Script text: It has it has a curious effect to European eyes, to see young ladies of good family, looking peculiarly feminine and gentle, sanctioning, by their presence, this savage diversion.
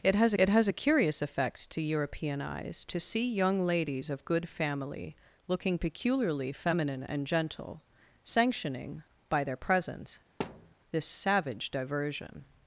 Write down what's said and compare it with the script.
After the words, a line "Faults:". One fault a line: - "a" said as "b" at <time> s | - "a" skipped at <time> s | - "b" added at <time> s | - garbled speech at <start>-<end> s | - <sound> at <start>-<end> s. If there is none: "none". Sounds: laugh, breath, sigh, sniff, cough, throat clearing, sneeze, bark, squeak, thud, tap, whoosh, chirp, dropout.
It has it has a curious effect to European eyes, to see young ladies of good family, looking peculiarly feminine and gentle, sanctioning, by their presence, this savage diversion.
Faults:
- thud at 10.4-10.7 s